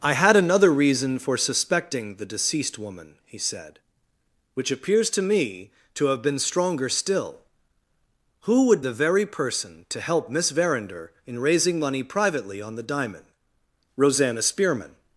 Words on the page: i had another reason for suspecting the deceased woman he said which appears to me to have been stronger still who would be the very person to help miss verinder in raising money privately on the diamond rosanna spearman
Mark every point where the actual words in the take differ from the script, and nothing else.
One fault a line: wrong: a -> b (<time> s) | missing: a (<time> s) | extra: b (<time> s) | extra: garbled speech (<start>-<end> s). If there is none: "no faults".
missing: be (8.8 s)